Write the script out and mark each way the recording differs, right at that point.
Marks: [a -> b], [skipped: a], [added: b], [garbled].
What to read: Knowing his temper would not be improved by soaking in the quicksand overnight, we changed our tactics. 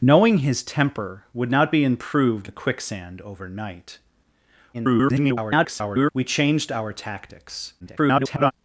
Knowing his temper would not be improved [skipped: by soaking in] the quicksand overnight, [garbled] we changed our tactics. [garbled]